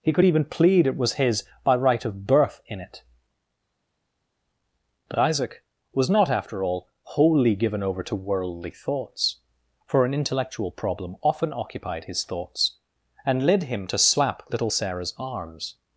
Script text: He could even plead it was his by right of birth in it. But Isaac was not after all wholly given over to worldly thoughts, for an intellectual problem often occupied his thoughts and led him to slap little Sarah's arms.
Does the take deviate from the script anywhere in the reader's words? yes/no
no